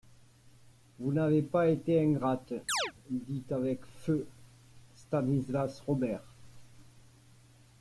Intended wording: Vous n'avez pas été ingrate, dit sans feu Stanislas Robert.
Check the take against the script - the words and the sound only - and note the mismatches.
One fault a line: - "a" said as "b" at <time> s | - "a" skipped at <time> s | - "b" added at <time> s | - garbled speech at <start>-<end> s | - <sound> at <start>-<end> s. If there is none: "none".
- chirp at 2.7-2.9 s
- "sans" said as "avec" at 3.5 s